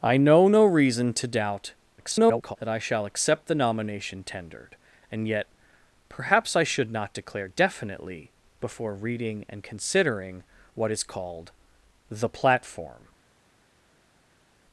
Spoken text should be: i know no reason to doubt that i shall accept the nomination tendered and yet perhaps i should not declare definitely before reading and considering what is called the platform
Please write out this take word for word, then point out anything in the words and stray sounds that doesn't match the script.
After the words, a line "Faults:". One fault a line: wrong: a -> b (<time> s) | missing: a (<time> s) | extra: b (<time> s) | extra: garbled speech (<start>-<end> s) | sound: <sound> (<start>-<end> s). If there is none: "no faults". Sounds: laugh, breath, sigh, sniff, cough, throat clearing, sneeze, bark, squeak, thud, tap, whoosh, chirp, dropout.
i know no reason to doubt [garbled] that i shall accept the nomination tendered and yet perhaps i should not declare definitely before reading and considering what is called the platform
Faults:
extra: garbled speech (2.0-2.6 s)